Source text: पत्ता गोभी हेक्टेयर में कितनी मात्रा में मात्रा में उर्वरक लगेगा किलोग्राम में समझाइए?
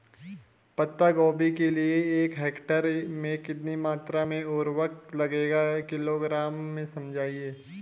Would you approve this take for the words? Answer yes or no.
no